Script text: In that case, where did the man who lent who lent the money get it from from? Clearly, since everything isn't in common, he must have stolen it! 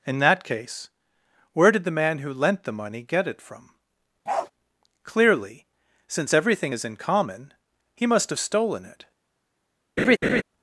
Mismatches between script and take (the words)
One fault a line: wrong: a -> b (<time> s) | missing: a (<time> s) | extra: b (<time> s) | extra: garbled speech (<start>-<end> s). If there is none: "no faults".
missing: who lent (2.6 s)
missing: from (3.7 s)
wrong: isn't -> is (6.7 s)